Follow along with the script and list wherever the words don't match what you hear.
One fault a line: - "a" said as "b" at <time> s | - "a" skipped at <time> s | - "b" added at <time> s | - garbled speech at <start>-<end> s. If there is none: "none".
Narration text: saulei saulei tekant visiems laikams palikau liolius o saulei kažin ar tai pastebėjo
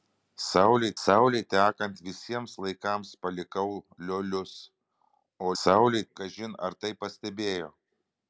none